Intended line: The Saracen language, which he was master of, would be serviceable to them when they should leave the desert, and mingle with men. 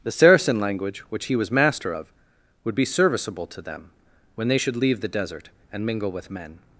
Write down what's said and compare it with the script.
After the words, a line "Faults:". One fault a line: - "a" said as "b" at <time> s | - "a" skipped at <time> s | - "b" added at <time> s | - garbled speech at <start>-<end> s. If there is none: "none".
The Saracen language, which he was master of, would be serviceable to them when they should leave the desert, and mingle with men.
Faults:
none